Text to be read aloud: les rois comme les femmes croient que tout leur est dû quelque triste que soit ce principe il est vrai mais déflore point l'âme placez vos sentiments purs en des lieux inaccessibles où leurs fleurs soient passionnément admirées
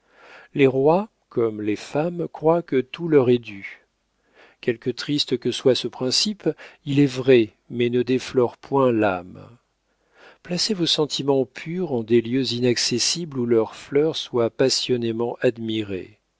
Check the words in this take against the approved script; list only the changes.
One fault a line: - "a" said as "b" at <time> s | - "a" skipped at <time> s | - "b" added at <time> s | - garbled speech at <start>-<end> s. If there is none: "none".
- "ne" added at 7.9 s